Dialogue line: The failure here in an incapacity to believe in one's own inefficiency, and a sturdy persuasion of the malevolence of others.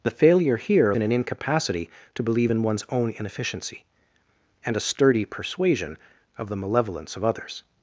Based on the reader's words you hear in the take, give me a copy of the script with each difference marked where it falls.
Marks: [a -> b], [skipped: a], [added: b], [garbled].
The failure here in an incapacity to believe in one's own inefficiency, and a sturdy persuasion of the malevolence of others.